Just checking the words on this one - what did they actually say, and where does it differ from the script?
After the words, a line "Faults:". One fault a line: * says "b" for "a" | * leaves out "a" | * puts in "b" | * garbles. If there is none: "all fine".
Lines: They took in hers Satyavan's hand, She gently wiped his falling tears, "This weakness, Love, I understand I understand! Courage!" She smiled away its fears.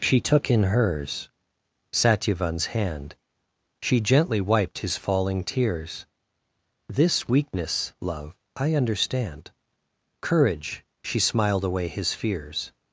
She took in hers Satyavan's hand, She gently wiped his falling tears, "This weakness, Love, I understand! Courage!" She smiled away his fears.
Faults:
* says "She" for "They"
* leaves out "I understand"
* says "his" for "its"